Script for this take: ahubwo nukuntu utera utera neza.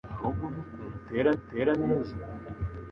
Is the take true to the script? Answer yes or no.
yes